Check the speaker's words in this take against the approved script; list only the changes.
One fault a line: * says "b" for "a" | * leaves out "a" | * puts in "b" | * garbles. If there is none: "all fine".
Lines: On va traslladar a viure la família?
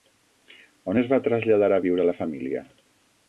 * puts in "es"